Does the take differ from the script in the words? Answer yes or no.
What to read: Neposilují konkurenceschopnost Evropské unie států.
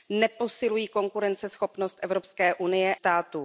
no